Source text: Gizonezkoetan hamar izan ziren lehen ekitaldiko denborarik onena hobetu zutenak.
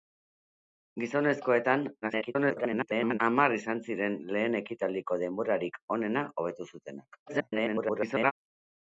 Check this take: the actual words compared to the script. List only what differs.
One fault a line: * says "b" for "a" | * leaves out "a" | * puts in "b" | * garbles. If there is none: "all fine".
* garbles
* garbles